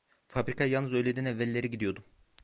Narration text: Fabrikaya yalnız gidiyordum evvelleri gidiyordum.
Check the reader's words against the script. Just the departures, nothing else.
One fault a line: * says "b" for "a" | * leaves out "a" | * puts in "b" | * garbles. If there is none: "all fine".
* says "öğleden" for "gidiyordum"